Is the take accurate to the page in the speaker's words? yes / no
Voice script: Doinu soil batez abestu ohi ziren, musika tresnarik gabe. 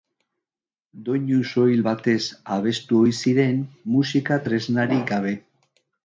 yes